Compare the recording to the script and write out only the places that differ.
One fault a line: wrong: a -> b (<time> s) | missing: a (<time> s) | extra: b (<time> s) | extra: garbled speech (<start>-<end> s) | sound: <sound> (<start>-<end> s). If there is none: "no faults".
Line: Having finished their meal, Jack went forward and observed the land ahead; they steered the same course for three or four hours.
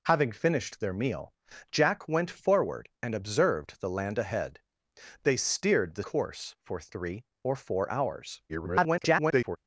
missing: same (6.0 s)
extra: garbled speech (8.5-9.6 s)